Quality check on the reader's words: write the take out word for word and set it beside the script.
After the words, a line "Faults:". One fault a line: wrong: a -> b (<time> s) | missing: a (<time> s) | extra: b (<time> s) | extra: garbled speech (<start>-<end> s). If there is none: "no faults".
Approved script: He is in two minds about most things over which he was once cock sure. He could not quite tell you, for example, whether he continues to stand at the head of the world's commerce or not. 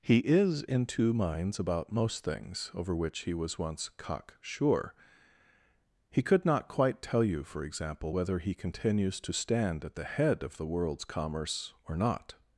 He is in two minds about most things over which he was once cock sure. He could not quite tell you, for example, whether he continues to stand at the head of the world's commerce or not.
Faults:
no faults